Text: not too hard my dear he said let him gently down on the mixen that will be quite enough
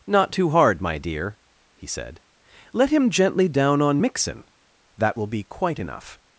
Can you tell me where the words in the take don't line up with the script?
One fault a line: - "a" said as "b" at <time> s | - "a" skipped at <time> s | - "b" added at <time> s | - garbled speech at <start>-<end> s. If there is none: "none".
- "the" skipped at 4.0 s